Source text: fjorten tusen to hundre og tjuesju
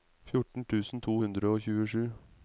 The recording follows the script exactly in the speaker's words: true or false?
true